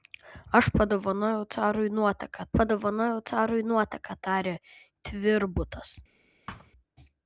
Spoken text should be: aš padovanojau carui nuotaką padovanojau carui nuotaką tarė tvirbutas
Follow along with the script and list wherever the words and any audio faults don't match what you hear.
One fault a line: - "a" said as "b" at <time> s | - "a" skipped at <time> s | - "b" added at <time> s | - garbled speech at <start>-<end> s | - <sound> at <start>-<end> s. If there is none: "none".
- thud at 6.5-6.7 s